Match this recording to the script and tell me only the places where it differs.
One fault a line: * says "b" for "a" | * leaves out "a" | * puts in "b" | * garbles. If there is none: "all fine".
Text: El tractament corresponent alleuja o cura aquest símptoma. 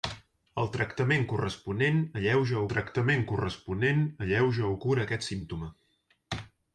* puts in "tractament corresponent alleuja"